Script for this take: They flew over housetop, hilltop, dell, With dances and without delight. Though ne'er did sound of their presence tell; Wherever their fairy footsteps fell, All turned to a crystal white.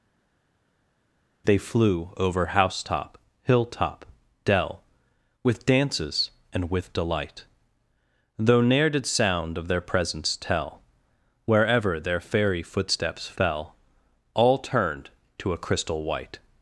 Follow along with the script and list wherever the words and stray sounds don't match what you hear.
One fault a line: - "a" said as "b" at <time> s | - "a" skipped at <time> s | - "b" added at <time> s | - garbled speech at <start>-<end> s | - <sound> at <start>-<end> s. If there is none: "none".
- "without" said as "with" at 6.7 s